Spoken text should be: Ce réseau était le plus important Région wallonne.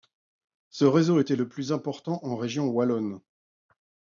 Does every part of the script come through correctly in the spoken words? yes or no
no